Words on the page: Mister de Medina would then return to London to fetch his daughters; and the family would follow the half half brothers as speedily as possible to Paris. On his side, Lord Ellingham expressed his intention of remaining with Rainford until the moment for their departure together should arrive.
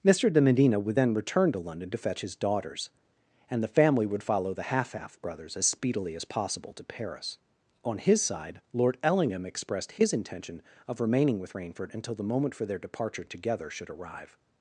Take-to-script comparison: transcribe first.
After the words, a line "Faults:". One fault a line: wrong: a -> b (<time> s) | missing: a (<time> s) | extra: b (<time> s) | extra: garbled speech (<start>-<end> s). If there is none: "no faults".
Mister de Medina would then return to London to fetch his daughters; and the family would follow the half half brothers as speedily as possible to Paris. On his side, Lord Ellingham expressed his intention of remaining with Rainford until the moment for their departure together should arrive.
Faults:
no faults